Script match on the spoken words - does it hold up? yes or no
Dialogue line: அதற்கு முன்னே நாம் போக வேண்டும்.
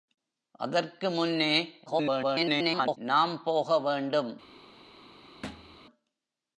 no